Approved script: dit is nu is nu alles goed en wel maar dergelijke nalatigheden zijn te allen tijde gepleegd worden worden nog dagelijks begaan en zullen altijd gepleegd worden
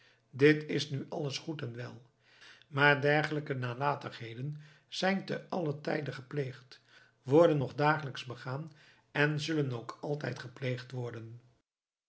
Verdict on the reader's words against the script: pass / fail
fail